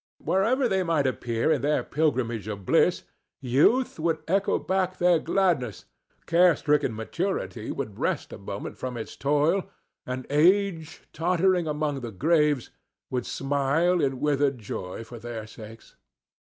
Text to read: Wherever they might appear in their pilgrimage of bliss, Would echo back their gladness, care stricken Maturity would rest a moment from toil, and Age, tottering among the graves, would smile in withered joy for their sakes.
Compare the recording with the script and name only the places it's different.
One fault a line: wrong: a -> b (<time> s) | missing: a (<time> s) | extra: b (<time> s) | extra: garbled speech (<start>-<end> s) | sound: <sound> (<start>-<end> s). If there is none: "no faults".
extra: Youth (3.4 s)
extra: its (9.0 s)